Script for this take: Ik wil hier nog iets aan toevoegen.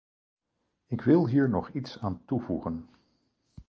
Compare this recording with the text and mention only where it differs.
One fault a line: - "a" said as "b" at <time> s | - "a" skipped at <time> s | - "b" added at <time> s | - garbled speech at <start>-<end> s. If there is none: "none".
none